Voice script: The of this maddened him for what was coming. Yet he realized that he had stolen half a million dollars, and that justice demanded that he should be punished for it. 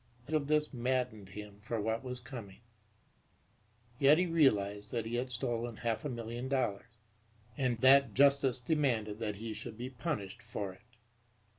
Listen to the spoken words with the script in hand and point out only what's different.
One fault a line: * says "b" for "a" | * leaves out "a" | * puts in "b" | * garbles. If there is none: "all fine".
all fine